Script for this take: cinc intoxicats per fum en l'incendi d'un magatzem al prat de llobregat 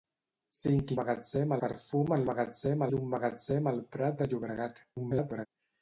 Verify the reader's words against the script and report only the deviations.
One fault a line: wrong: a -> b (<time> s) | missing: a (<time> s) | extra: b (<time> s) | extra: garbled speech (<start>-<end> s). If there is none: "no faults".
wrong: intoxicats -> magatzem (1.0 s)
wrong: l'incendi -> magatzem (2.3 s)
extra: garbled speech (5.0-5.5 s)